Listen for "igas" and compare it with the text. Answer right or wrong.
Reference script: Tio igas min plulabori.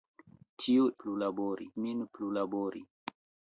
wrong